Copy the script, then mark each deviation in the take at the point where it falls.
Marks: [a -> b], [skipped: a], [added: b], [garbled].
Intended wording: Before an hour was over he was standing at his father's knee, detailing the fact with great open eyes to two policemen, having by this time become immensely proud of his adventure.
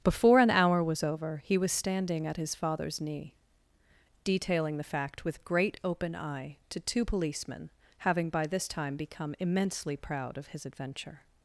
Before an hour was over he was standing at his father's knee, detailing the fact with great open [eyes -> eye] to two policemen, having by this time become immensely proud of his adventure.